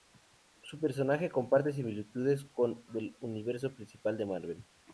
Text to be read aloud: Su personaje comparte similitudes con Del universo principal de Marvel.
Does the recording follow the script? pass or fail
pass